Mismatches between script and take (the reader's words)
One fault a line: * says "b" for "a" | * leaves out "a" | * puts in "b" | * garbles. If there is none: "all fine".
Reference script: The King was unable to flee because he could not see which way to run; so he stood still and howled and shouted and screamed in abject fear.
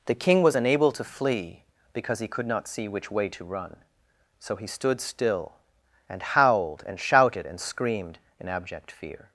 all fine